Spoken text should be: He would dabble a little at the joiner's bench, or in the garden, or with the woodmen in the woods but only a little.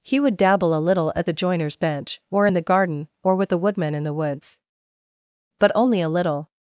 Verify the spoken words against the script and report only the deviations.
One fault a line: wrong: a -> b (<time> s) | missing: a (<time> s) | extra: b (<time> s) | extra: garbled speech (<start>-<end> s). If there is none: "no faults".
no faults